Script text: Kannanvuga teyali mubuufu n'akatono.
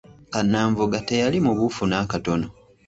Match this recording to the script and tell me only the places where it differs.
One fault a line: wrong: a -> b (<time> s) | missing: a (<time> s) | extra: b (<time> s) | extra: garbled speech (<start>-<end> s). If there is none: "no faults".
no faults